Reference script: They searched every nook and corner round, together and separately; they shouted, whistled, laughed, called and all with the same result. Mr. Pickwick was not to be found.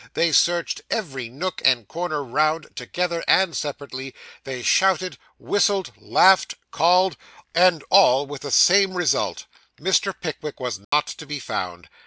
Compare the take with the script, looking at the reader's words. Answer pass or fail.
pass